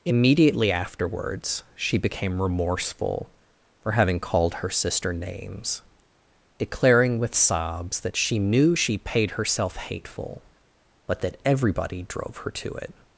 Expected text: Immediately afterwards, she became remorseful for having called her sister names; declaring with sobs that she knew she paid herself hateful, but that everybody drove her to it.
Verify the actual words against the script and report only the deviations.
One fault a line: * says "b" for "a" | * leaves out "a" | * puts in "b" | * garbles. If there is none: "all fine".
all fine